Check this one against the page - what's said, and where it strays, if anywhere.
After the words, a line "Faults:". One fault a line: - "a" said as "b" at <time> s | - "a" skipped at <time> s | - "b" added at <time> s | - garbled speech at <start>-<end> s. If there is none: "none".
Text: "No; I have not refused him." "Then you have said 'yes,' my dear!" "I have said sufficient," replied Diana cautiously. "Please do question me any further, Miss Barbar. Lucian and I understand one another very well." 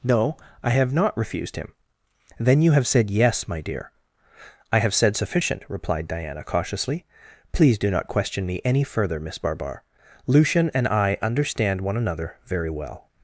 "No; I have not refused him." "Then you have said 'yes,' my dear!" "I have said sufficient," replied Diana cautiously. "Please do not question me any further, Miss Barbar. Lucian and I understand one another very well."
Faults:
- "not" added at 7.9 s